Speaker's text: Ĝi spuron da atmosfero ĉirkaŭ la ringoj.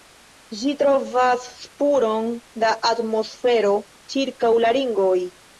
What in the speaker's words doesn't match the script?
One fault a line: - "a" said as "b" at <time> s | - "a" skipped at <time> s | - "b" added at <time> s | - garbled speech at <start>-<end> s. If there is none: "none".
- "trovas" added at 0.8 s